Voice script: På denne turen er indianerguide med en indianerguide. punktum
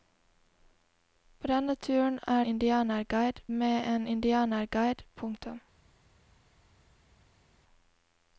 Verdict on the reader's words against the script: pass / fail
pass